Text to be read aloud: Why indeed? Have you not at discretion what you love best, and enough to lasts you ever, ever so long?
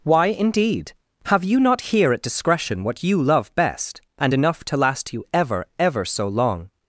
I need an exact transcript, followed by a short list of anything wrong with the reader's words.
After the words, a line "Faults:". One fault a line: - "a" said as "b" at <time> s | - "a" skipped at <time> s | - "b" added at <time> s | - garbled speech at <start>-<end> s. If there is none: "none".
Why indeed? Have you not here at discretion what you love best, and enough to last you ever, ever so long?
Faults:
- "here" added at 1.8 s
- "lasts" said as "last" at 4.8 s